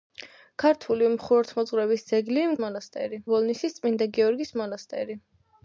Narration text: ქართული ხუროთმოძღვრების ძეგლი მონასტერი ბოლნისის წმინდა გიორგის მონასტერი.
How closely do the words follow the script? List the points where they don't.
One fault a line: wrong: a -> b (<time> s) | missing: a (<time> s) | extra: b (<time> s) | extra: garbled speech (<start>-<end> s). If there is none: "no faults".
no faults